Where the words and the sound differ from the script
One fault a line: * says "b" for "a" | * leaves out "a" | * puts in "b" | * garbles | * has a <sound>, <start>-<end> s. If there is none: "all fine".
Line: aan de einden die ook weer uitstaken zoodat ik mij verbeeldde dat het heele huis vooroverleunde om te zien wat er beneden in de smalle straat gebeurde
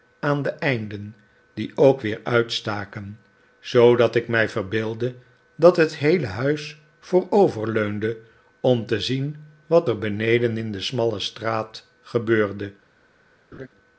* has a laugh, 13.5-13.7 s